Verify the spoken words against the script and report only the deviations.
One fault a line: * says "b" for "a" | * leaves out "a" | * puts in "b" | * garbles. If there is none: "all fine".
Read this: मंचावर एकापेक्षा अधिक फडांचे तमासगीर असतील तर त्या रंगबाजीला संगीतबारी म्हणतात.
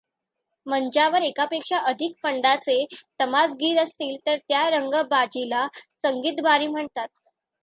all fine